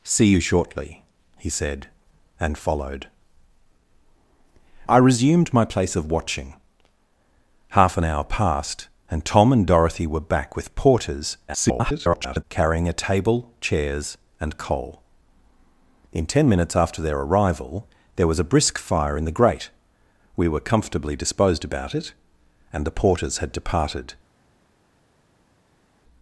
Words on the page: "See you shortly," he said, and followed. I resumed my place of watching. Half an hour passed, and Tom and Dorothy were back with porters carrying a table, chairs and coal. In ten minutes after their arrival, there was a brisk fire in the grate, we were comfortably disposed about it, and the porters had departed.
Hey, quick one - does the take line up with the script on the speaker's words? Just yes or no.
no